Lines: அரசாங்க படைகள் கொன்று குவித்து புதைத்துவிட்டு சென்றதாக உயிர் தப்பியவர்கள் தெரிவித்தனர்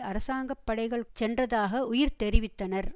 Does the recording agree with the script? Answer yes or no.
no